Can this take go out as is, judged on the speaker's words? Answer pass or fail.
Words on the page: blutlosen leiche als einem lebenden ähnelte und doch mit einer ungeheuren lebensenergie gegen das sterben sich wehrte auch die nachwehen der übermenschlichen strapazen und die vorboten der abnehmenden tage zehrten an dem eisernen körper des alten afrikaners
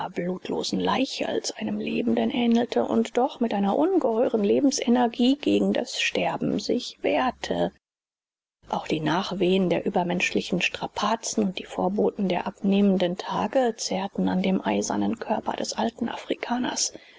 pass